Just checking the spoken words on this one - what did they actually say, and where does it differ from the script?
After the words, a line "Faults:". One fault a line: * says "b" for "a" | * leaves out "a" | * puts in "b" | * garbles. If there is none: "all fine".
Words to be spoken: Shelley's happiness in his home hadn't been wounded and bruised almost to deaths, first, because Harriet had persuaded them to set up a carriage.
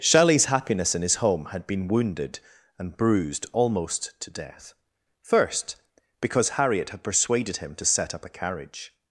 Shelley's happiness in his home had been wounded and bruised almost to death, first, because Harriet had persuaded him to set up a carriage.
Faults:
* says "had" for "hadn't"
* says "death" for "deaths"
* says "him" for "them"